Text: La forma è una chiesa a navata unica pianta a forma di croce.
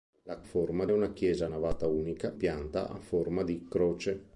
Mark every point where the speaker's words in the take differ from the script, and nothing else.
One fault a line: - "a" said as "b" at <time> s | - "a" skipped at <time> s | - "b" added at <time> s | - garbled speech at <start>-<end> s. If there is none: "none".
none